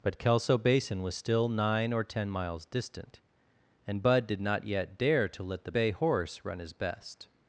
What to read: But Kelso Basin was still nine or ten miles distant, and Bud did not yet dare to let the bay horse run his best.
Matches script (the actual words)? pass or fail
pass